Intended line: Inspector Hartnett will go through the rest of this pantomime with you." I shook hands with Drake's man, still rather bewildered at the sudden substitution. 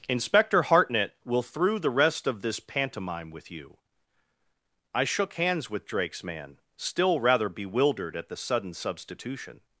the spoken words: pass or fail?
fail